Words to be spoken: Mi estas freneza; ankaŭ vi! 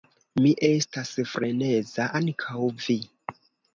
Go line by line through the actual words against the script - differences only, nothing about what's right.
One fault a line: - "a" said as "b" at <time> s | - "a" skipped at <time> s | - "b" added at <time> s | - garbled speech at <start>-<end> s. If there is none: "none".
none